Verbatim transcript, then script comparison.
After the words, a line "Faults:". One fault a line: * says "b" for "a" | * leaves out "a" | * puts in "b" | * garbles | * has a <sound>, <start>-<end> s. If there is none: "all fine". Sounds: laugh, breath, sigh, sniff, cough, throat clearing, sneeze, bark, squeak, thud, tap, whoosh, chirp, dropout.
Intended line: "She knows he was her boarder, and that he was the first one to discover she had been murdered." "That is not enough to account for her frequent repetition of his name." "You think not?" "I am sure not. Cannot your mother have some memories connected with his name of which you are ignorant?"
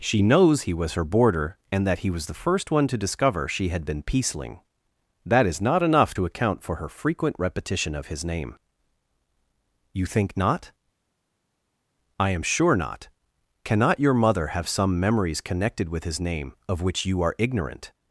"She knows he was her boarder, and that he was the first one to discover she had been peaceling." "That is not enough to account for her frequent repetition of his name." "You think not?" "I am sure not. Cannot your mother have some memories connected with his name of which you are ignorant?"
Faults:
* says "peaceling" for "murdered"